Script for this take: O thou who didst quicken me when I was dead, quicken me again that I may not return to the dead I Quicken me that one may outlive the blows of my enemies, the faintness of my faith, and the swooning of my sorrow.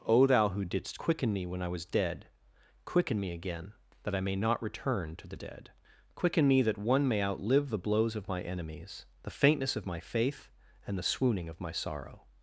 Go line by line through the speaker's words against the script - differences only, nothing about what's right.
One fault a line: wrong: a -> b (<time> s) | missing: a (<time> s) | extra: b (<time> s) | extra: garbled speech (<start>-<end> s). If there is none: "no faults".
missing: I (5.7 s)